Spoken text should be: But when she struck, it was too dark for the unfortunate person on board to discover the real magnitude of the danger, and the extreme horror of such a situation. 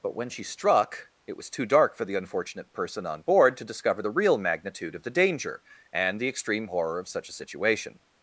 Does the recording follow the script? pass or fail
pass